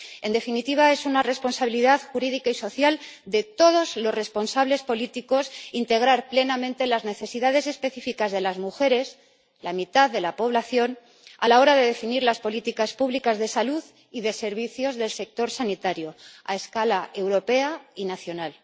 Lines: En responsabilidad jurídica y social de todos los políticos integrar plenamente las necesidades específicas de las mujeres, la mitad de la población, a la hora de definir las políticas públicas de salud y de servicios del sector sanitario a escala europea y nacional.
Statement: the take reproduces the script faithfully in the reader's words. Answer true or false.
false